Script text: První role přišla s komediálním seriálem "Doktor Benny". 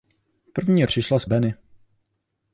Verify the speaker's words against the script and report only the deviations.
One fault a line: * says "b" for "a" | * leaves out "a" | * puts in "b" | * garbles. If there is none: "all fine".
* leaves out "role"
* leaves out "komediálním seriálem Doktor"